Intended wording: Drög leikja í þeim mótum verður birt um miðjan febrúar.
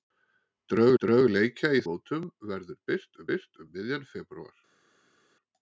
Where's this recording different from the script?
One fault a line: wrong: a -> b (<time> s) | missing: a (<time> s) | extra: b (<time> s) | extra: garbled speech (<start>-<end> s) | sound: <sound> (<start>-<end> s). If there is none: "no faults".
extra: drög (1.0 s)
missing: þeim (1.8 s)
extra: birt (3.3 s)